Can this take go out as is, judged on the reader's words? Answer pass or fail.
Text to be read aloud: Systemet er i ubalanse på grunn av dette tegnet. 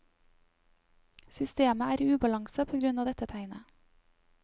pass